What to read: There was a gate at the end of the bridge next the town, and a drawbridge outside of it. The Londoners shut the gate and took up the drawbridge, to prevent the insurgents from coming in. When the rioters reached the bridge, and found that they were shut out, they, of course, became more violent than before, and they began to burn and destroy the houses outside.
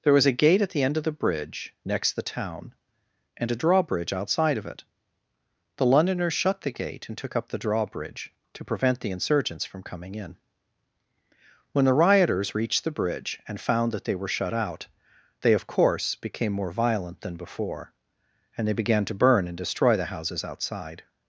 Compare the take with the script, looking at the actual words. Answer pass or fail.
pass